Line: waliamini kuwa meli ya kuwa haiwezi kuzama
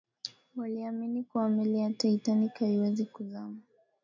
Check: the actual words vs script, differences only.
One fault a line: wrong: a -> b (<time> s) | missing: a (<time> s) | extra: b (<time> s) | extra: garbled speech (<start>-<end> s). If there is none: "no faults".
wrong: kuwa -> titanic (1.9 s)